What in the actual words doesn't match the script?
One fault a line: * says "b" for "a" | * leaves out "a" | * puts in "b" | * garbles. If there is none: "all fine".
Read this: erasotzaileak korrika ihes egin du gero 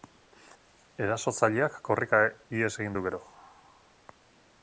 all fine